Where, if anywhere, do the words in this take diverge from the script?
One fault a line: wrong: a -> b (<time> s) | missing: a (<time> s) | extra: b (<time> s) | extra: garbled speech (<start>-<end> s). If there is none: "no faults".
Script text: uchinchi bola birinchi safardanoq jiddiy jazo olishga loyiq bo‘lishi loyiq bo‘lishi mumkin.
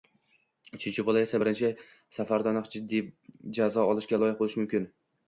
extra: esa (1.2 s)
missing: loyiq bo‘lishi (4.6 s)